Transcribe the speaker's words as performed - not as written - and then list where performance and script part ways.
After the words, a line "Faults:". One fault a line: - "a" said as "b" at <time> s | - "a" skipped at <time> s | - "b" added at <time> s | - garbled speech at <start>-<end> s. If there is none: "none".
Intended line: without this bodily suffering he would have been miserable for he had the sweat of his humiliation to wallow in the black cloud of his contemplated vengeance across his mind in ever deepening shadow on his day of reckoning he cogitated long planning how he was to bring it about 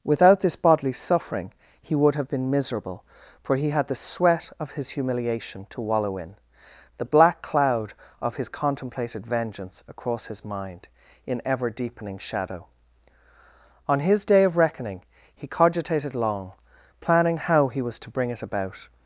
without this bodily suffering he would have been miserable for he had the sweat of his humiliation to wallow in the black cloud of his contemplated vengeance across his mind in ever deepening shadow on his day of reckoning he cogitated long planning how he was to bring it about
Faults:
none